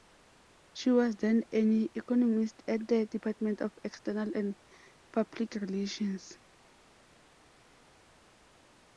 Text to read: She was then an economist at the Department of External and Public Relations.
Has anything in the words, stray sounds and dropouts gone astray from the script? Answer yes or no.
no